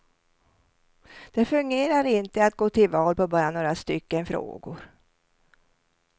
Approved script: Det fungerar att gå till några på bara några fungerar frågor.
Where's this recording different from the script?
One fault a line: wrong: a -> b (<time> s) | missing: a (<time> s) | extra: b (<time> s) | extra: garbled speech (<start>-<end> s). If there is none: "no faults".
extra: inte (2.0 s)
wrong: några -> val (2.9 s)
wrong: fungerar -> stycken (3.7 s)